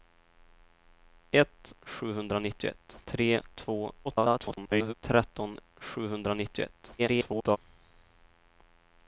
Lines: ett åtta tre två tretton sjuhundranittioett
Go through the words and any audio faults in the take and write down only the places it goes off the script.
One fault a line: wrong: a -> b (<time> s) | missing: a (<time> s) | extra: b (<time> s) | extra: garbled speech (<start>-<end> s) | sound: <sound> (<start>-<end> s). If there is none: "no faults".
wrong: åtta -> sjuhundranittioett (1.8 s)
extra: garbled speech (4.0-4.9 s)
extra: garbled speech (7.0-7.6 s)